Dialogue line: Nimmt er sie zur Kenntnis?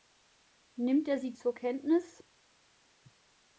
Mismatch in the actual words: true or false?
false